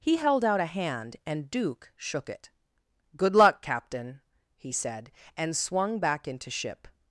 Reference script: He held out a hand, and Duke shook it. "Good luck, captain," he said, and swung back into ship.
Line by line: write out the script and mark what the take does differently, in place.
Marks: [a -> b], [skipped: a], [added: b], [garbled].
He held out a hand, and Duke shook it. "Good luck, captain," he said, and swung back into ship.